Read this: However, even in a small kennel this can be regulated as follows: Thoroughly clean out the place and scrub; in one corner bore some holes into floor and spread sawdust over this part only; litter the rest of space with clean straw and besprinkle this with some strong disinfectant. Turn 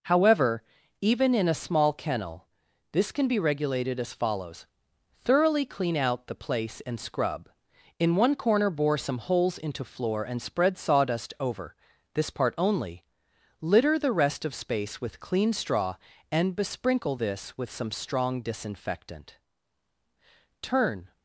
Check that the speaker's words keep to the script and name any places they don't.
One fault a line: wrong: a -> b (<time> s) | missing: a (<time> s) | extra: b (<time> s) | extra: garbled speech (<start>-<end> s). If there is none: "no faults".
no faults